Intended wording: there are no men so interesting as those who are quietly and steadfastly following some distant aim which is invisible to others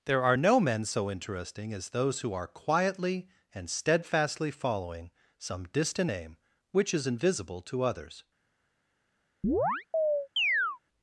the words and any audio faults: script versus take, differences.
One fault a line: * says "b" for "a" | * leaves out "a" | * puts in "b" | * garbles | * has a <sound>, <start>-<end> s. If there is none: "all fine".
* has a chirp, 9.4-10.8 s